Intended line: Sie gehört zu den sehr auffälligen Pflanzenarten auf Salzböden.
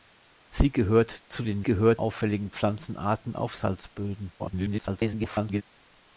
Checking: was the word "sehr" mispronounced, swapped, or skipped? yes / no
yes